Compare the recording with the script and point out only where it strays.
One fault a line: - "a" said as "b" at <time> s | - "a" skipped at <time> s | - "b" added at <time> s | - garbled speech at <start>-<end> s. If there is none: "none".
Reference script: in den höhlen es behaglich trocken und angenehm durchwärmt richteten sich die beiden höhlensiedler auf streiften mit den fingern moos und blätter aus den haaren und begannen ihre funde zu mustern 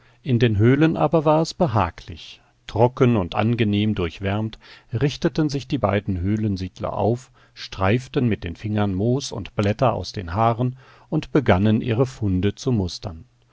- "aber war" added at 1.0 s